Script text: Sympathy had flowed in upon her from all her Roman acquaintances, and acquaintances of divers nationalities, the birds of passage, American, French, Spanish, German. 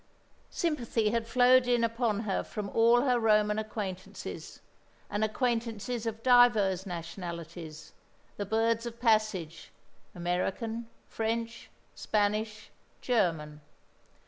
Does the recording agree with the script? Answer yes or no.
yes